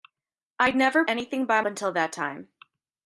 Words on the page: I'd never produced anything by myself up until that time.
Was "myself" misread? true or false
true